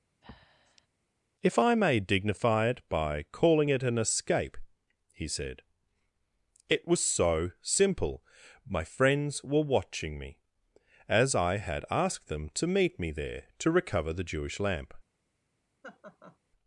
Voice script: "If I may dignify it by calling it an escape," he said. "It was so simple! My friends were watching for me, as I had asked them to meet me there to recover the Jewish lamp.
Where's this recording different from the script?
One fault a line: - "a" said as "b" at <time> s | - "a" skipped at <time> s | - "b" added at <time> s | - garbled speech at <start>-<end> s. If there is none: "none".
- "for" skipped at 10.2 s